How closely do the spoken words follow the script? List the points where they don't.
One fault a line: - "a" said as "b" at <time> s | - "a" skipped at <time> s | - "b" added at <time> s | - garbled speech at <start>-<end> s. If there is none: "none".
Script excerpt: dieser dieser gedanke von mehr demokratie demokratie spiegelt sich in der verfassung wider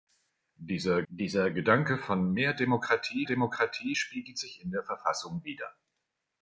none